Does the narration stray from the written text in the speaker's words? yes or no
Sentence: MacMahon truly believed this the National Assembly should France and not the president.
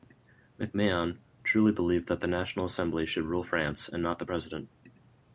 yes